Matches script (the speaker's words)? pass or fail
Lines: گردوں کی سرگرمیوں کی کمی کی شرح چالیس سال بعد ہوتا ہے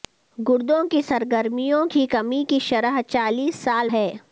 fail